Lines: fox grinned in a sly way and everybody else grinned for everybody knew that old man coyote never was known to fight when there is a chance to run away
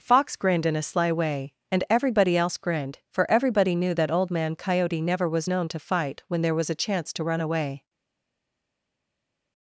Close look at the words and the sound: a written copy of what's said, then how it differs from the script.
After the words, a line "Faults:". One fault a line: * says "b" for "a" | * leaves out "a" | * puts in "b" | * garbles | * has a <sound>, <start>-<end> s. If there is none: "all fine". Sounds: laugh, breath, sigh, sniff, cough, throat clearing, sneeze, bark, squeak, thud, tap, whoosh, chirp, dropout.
fox grinned in a sly way and everybody else grinned for everybody knew that old man coyote never was known to fight when there was a chance to run away
Faults:
* says "was" for "is"